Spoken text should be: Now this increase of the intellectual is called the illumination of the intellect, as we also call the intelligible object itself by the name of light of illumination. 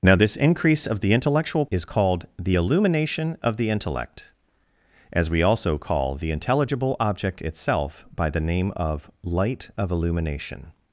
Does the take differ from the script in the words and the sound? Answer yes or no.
no